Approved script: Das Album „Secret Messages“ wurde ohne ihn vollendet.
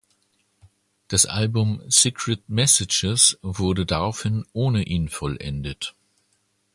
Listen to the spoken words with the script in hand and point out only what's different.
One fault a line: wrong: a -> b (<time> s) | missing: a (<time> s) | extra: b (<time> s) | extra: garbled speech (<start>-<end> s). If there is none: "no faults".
extra: daraufhin (3.8 s)